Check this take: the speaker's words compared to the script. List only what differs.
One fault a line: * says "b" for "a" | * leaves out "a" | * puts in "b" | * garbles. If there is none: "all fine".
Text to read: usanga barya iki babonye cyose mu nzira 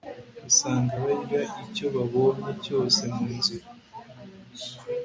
* says "icyo" for "iki"